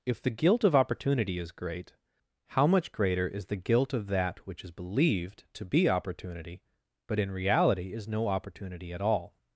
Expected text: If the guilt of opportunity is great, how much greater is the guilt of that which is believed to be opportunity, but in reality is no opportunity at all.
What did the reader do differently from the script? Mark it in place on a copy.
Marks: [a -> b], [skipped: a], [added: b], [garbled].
If the guilt of opportunity is great, how much greater is the guilt of that which is believed to be opportunity, but in reality is no opportunity at all.